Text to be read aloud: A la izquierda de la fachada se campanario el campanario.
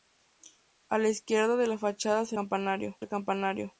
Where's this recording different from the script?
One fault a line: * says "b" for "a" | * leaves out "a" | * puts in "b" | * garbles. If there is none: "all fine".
all fine